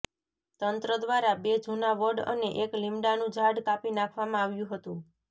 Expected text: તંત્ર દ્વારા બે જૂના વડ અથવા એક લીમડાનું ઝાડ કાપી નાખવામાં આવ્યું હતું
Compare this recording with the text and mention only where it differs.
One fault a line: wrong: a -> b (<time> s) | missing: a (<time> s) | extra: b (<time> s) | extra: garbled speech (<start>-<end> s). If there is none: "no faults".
wrong: અથવા -> અને (2.3 s)